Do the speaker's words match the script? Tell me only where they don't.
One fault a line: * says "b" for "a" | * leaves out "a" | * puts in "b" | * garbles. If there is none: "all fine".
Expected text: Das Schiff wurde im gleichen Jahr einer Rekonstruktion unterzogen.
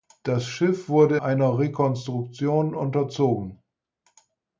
* leaves out "im gleichen Jahr"